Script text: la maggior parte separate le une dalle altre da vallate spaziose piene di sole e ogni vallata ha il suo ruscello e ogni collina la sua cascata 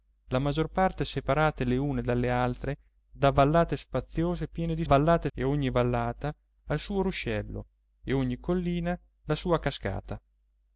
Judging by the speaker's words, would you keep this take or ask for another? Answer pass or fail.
fail